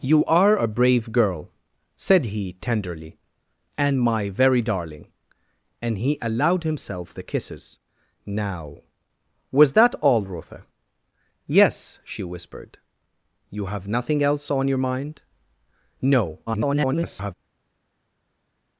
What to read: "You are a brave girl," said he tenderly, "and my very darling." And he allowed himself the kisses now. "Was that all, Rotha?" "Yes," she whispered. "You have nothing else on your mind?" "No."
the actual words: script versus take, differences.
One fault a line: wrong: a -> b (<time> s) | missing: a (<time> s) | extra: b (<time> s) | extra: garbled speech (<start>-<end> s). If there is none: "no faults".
extra: garbled speech (16.5-17.3 s)